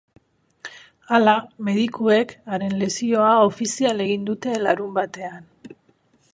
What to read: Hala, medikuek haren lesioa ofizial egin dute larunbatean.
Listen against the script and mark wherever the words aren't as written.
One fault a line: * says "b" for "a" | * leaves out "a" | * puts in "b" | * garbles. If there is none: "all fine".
all fine